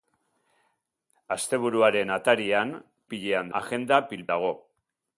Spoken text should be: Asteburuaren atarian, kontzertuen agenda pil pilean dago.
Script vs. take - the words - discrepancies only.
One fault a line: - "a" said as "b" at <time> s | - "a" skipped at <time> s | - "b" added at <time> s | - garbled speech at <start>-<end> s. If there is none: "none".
- "kontzertuen" said as "pilean" at 3.1 s
- "pilean" skipped at 4.3 s